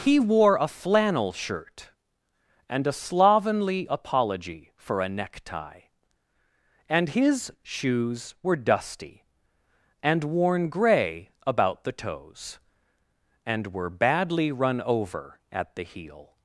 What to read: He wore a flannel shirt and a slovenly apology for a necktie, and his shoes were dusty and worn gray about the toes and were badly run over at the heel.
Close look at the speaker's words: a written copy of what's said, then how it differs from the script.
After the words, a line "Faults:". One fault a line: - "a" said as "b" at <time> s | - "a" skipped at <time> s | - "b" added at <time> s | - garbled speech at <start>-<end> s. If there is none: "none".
He wore a flannel shirt and a slovenly apology for a necktie, and his shoes were dusty and worn gray about the toes and were badly run over at the heel.
Faults:
none